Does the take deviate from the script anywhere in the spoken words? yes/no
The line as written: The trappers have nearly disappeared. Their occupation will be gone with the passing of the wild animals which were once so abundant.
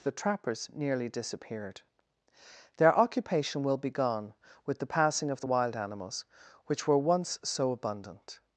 yes